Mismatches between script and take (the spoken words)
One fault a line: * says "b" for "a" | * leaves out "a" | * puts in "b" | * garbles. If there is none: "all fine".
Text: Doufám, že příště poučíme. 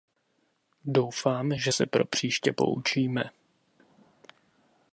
* puts in "se pro"